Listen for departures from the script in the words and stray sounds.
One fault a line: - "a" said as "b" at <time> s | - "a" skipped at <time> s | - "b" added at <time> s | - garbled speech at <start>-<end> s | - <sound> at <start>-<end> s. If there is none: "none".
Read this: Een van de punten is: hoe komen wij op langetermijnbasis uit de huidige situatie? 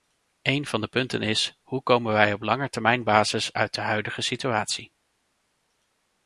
none